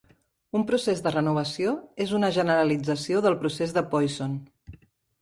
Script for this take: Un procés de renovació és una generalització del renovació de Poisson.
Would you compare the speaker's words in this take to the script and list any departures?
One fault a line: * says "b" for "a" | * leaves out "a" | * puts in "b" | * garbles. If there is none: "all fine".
* says "procés" for "renovació"